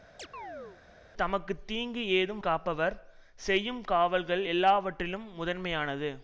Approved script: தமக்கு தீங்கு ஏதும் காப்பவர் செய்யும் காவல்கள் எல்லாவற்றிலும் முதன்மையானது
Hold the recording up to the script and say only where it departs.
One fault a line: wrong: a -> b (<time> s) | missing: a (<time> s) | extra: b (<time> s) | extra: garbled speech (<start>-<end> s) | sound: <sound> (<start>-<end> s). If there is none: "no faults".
sound: chirp (0.2-0.8 s)